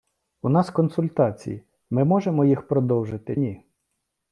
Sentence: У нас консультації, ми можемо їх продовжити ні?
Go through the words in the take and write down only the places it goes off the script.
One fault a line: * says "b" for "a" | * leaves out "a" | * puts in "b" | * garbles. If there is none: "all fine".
all fine